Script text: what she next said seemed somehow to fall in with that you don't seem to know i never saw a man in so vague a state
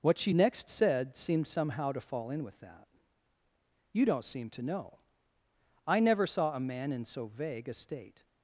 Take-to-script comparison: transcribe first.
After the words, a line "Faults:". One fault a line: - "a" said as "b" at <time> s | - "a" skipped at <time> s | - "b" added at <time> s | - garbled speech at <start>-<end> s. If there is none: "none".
what she next said seemed somehow to fall in with that you don't seem to know i never saw a man in so vague a state
Faults:
none